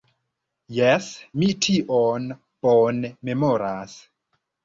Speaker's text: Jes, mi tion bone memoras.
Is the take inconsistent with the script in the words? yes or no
no